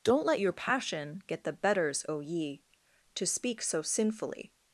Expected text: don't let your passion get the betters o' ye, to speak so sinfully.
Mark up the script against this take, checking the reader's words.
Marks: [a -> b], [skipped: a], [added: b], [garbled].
don't let your passion get the betters o' ye, to speak so sinfully.